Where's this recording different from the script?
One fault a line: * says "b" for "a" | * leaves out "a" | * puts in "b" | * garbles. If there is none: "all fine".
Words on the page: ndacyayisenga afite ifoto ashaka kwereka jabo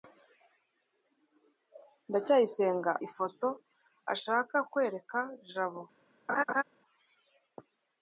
* leaves out "afite"